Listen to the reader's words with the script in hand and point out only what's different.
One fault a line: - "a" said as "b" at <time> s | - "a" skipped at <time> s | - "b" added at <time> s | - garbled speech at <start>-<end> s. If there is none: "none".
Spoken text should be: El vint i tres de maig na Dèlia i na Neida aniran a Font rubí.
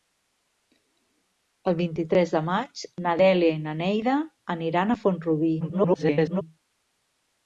- garbled speech at 5.6-6.4 s